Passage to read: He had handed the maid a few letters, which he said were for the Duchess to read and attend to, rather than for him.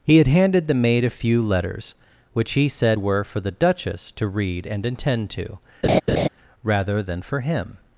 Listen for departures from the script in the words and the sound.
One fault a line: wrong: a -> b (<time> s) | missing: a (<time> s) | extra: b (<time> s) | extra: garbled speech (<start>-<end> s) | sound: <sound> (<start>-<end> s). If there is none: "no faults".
sound: laugh (5.8-6.3 s)